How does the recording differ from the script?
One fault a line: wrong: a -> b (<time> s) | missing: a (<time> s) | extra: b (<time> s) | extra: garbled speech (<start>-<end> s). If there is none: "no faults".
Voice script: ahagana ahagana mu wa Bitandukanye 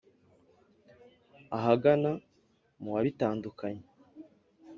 missing: ahagana (2.1 s)